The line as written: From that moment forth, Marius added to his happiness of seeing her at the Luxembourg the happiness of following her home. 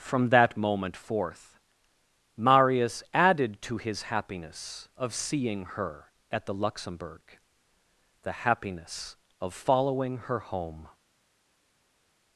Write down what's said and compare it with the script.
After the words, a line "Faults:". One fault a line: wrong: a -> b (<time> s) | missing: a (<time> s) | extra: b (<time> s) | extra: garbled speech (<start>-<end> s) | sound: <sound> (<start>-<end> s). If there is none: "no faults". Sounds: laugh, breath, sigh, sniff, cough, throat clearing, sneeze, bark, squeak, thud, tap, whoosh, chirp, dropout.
From that moment forth, Marius added to his happiness of seeing her at the Luxembourg the happiness of following her home.
Faults:
no faults